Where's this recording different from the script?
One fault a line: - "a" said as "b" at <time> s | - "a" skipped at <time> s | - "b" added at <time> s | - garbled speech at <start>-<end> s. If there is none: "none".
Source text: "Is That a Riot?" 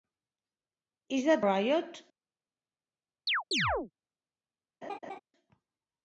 - "a" skipped at 1.4 s